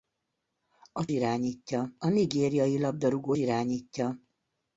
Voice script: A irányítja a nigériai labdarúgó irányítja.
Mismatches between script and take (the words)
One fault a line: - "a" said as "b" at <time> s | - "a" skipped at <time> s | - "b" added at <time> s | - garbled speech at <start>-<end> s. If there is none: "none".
none